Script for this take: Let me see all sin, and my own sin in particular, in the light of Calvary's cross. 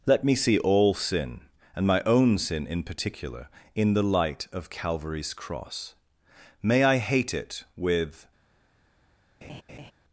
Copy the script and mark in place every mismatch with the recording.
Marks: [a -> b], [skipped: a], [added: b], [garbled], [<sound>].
Let me see all sin, and my own sin in particular, in the light of Calvary's cross. [added: May I hate it with] [laugh]